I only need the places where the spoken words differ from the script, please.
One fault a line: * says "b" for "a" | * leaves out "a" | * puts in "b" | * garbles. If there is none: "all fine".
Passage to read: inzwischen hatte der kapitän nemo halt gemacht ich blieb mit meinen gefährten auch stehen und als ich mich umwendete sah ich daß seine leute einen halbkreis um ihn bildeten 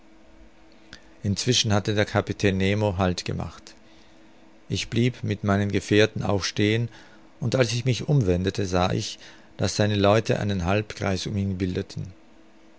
all fine